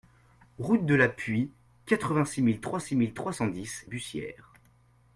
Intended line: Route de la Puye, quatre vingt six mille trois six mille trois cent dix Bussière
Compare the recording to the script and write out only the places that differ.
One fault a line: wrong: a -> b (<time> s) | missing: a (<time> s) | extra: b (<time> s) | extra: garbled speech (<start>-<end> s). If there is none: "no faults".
no faults